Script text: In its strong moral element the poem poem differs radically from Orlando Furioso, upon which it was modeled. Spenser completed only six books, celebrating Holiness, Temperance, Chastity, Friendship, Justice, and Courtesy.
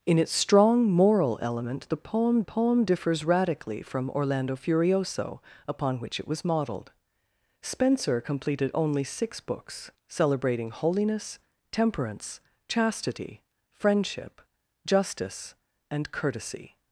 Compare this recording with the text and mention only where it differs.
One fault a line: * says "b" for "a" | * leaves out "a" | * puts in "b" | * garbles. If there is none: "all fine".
all fine